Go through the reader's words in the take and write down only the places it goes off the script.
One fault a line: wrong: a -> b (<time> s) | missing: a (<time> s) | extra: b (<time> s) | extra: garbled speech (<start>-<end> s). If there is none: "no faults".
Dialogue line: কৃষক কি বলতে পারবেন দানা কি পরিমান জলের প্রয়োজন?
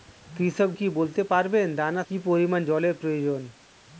no faults